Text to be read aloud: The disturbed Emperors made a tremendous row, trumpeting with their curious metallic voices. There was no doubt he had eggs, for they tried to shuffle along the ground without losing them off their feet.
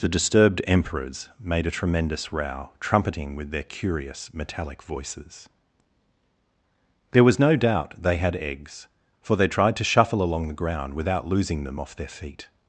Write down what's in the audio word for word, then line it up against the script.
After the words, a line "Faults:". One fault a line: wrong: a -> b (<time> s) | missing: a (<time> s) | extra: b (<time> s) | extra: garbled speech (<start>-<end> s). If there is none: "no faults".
The disturbed Emperors made a tremendous row, trumpeting with their curious metallic voices. There was no doubt they had eggs, for they tried to shuffle along the ground without losing them off their feet.
Faults:
wrong: he -> they (8.0 s)